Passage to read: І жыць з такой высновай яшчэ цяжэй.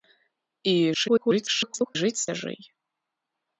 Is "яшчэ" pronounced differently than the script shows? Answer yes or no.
yes